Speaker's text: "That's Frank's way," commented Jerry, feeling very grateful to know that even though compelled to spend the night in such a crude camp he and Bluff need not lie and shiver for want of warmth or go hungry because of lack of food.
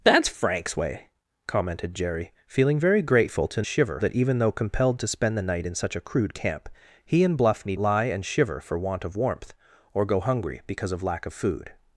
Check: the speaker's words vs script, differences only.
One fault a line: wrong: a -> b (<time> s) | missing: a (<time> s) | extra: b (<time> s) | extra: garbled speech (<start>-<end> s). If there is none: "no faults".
wrong: know -> shiver (3.6 s)
missing: not (7.8 s)